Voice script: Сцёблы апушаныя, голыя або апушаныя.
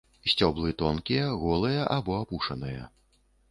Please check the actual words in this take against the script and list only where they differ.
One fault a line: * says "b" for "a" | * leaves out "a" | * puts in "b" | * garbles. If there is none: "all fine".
* says "тонкія" for "апушаныя"